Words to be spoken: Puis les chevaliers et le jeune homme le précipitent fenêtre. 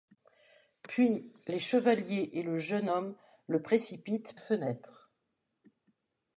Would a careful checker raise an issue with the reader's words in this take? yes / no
no